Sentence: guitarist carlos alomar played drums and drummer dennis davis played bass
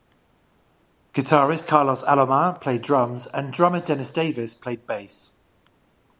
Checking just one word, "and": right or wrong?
right